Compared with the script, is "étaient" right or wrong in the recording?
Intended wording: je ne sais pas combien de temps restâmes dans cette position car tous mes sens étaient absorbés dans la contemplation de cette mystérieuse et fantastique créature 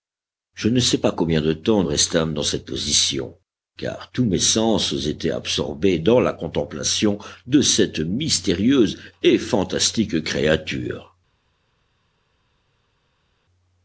right